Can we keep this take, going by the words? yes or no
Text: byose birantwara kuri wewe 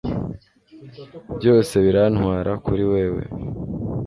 yes